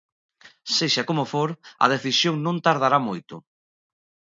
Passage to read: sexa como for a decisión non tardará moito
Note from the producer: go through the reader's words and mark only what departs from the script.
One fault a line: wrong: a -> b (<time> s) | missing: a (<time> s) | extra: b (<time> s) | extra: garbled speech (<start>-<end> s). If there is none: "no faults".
no faults